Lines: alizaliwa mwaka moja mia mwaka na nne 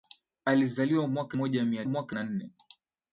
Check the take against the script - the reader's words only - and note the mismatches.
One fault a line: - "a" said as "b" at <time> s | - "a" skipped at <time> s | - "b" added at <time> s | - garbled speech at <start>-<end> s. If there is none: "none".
none